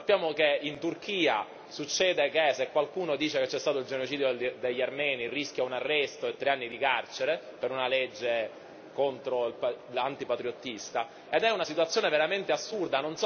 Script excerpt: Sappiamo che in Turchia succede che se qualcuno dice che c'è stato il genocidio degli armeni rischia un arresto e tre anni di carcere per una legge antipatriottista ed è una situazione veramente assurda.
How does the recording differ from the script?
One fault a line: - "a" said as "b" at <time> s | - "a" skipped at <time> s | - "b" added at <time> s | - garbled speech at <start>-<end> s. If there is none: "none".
none